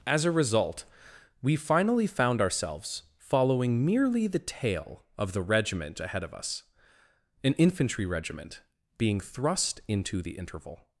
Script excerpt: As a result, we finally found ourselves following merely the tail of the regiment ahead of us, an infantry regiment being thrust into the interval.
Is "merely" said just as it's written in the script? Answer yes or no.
yes